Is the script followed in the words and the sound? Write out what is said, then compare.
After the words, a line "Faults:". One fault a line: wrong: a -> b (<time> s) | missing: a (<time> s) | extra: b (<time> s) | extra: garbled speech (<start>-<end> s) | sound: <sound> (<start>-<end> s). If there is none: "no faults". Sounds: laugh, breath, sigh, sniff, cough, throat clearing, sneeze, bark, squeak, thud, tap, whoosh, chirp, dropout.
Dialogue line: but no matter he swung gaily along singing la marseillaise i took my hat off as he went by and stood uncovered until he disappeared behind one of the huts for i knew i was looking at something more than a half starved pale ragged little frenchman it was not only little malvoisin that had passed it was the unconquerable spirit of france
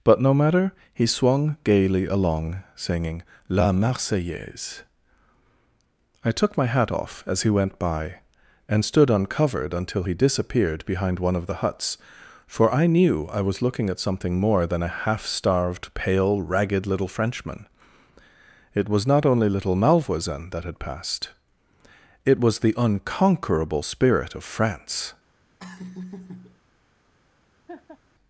but no matter he swung gaily along singing la marseillaise i took my hat off as he went by and stood uncovered until he disappeared behind one of the huts for i knew i was looking at something more than a half starved pale ragged little frenchman it was not only little malvoisin that had passed it was the unconquerable spirit of france
Faults:
sound: laugh (25.6-26.6 s)
sound: laugh (27.7-28.0 s)